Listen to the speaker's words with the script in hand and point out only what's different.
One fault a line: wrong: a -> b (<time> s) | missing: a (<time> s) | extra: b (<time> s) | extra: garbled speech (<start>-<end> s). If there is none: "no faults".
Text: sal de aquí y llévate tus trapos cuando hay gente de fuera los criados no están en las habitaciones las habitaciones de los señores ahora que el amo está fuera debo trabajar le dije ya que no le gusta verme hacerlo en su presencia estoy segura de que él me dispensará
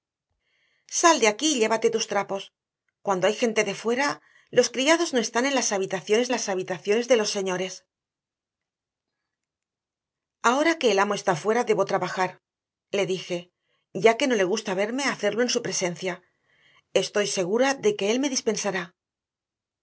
no faults